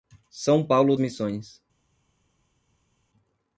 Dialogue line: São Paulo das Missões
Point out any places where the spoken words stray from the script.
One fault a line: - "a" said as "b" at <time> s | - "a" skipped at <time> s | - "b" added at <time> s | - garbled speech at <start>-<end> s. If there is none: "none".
- "das" skipped at 0.9 s